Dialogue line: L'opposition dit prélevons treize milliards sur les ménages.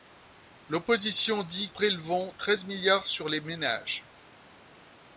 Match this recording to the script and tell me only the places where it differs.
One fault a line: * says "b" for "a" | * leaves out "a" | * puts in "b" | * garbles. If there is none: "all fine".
all fine